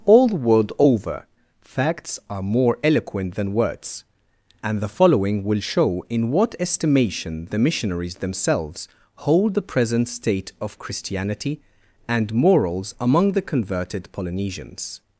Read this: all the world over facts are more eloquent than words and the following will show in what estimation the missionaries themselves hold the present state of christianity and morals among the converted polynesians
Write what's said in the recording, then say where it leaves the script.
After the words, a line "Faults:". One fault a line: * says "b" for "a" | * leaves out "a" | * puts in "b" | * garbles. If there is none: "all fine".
all the world over facts are more eloquent than words and the following will show in what estimation the missionaries themselves hold the present state of christianity and morals among the converted polynesians
Faults:
all fine